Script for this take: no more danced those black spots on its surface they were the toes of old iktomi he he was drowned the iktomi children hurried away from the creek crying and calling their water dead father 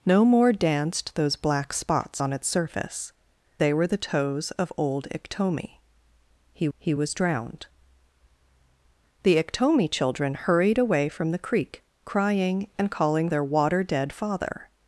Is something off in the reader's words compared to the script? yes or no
no